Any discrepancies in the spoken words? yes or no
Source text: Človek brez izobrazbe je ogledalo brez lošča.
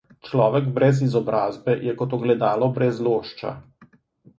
yes